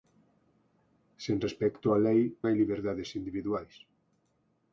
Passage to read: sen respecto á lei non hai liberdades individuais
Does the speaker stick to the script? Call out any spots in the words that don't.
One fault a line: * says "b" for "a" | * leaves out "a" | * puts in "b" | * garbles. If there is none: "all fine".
* leaves out "non"